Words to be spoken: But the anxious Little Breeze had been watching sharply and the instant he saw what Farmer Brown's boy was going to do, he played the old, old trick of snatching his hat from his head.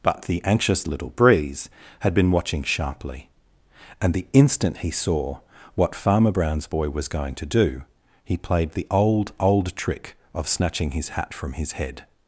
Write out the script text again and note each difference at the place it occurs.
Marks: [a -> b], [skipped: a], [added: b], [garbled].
But the anxious Little Breeze had been watching sharply and the instant he saw what Farmer Brown's boy was going to do, he played the old, old trick of snatching his hat from his head.